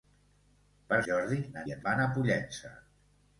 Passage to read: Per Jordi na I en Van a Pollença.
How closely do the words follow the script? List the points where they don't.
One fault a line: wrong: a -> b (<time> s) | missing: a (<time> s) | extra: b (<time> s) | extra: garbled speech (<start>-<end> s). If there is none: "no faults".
no faults